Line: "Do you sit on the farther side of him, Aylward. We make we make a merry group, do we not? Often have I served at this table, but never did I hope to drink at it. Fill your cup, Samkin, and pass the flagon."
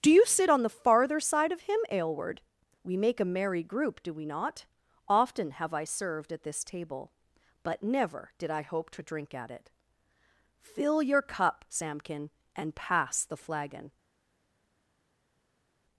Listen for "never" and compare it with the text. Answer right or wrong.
right